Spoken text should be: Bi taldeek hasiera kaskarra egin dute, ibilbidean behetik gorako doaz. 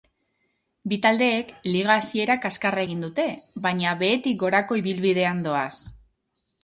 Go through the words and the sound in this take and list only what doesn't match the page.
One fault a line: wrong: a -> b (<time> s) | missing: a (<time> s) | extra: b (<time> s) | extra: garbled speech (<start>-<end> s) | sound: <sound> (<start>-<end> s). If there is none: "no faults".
extra: liga (1.7 s)
wrong: ibilbidean -> baina (3.7 s)
extra: ibilbidean (4.8 s)